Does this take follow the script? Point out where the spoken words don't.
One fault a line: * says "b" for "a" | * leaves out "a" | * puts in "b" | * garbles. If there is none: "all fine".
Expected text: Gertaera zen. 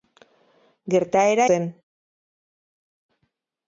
all fine